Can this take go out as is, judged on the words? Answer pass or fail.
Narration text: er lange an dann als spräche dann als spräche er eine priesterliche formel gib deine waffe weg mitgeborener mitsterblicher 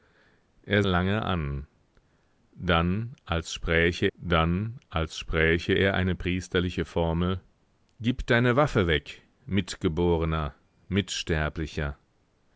pass